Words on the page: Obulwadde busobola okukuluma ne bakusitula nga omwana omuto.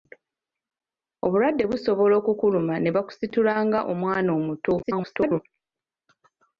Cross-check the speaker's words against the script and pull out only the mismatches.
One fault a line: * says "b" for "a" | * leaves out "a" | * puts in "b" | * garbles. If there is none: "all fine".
* garbles